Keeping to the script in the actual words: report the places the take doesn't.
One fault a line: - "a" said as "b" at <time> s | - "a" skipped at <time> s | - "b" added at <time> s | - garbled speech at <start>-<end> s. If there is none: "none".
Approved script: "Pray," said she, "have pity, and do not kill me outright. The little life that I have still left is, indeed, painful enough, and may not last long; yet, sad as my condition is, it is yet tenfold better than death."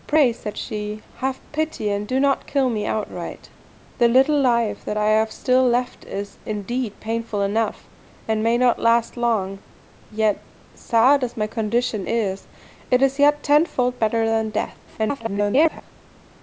- garbled speech at 14.9-15.8 s